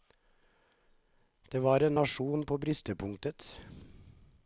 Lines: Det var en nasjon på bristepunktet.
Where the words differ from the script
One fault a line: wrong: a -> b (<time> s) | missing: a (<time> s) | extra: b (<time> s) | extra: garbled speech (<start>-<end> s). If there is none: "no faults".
no faults